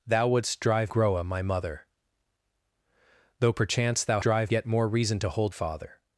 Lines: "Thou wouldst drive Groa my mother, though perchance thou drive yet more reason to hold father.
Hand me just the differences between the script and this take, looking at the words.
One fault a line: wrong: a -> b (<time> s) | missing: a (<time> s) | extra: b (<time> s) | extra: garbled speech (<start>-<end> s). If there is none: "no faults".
no faults